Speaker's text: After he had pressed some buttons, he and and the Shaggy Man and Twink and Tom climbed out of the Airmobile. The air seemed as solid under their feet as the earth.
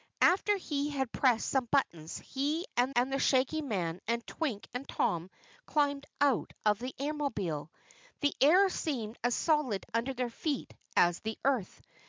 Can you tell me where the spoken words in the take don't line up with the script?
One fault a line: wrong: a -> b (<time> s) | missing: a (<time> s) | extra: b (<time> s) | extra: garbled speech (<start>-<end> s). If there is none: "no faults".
no faults